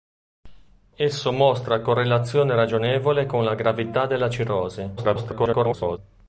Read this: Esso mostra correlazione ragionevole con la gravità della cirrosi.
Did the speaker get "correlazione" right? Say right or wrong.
right